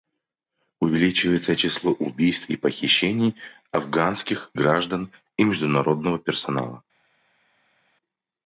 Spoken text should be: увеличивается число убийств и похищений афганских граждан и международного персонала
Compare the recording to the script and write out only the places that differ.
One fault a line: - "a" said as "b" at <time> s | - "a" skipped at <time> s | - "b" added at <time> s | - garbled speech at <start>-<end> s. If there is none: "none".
none